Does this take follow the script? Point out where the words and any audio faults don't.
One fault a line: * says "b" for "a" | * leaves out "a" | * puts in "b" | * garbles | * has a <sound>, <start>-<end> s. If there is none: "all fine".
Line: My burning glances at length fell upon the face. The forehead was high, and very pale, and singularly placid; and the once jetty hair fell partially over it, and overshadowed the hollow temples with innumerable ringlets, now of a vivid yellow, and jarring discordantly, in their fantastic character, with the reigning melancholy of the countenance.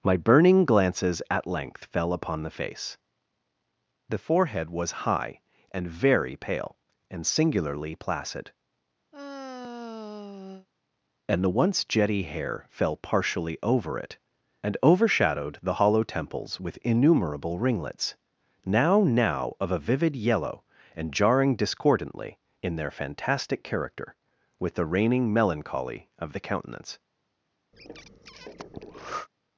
* has a sigh, 9.1-10.7 s
* puts in "now"
* has a breath, 27.7-29.3 s